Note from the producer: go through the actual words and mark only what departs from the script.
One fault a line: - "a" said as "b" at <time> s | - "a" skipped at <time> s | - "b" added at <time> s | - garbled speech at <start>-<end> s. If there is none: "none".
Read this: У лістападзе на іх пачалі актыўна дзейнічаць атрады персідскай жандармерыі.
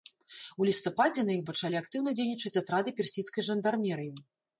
none